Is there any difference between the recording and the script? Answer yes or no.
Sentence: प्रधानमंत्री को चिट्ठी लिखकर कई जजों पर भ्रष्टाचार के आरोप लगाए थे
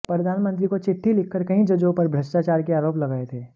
no